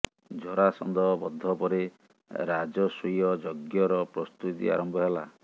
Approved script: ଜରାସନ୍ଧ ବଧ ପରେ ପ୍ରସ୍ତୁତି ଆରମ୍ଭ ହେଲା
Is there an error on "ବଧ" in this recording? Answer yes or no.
no